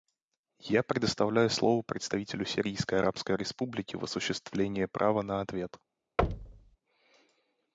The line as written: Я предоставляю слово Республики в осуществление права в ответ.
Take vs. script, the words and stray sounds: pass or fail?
fail